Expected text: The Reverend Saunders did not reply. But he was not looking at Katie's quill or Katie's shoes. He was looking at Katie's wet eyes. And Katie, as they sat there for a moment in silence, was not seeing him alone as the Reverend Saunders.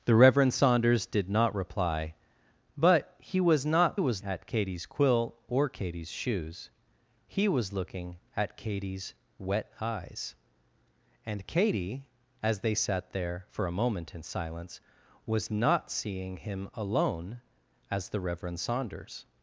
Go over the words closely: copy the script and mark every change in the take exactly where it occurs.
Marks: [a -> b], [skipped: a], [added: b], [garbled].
The Reverend Saunders did not reply. But he was not [looking -> was] at Katie's quill or Katie's shoes. He was looking at Katie's wet eyes. And Katie, as they sat there for a moment in silence, was not seeing him alone as the Reverend Saunders.